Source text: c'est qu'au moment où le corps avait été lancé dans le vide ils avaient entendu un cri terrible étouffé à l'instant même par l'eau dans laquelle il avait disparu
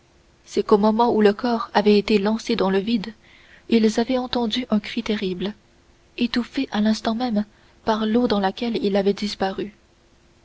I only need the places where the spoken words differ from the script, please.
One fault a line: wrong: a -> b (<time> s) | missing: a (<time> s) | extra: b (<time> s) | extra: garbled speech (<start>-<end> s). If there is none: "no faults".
no faults